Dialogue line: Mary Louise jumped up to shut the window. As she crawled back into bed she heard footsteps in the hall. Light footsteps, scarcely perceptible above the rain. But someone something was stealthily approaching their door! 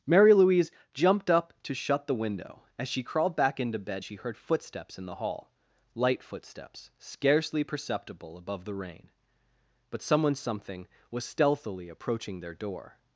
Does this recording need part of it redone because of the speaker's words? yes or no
no